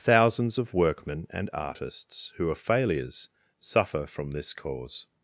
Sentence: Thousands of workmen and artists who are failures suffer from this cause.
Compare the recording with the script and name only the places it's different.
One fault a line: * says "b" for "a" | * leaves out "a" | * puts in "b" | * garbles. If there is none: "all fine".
all fine